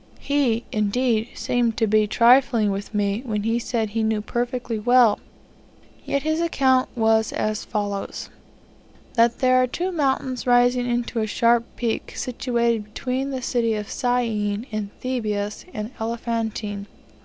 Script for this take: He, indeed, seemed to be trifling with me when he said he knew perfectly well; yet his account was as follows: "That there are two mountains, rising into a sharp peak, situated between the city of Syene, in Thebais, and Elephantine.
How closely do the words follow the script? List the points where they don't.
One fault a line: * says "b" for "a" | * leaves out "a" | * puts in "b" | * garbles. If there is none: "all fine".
all fine